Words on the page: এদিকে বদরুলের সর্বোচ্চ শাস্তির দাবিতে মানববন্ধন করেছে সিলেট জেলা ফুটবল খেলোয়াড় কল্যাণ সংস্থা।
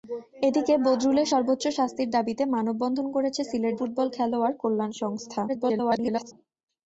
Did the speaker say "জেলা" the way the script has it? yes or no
no